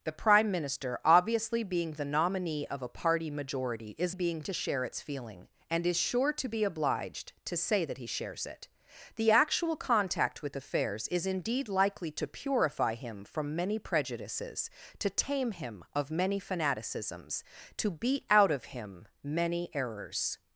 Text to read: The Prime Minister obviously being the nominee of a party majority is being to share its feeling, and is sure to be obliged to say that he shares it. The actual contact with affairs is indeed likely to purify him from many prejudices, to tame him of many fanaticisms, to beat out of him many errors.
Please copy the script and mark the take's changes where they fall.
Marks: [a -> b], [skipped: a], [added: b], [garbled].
The Prime Minister obviously being the nominee of a party majority is being to share its feeling, and is sure to be obliged to say that he shares it. The actual contact with affairs is indeed likely to purify him from many prejudices, to tame him of many fanaticisms, to beat out of him many errors.